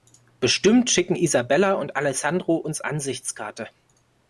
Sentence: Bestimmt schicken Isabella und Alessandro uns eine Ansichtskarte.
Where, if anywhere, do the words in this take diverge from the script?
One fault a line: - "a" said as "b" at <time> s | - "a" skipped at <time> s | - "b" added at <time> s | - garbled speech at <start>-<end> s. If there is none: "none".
- "eine" skipped at 2.8 s